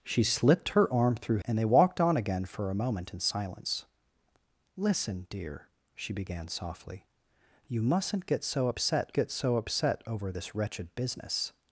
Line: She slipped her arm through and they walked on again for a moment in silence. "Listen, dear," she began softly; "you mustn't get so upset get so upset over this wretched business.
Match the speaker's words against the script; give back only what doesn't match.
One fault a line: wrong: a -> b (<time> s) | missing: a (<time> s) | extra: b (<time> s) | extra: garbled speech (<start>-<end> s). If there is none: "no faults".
no faults